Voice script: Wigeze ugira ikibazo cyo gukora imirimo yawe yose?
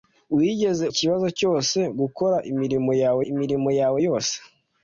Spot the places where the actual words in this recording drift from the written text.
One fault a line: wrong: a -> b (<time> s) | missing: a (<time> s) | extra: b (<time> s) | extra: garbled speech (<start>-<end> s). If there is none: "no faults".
missing: ugira (0.8 s)
extra: imirimo yawe (3.3 s)